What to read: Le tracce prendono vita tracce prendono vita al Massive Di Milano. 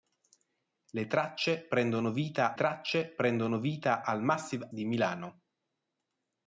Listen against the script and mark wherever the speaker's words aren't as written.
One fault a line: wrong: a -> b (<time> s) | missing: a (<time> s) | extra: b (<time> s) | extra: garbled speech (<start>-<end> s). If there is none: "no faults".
no faults